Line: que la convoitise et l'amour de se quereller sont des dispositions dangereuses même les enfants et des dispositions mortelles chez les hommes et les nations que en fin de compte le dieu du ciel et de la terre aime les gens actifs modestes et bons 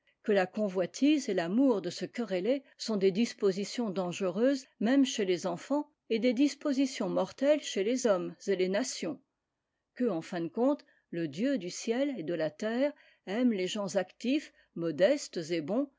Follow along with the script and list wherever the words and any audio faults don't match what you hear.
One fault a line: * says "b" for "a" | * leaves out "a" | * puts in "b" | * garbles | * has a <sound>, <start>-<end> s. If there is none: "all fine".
* puts in "chez"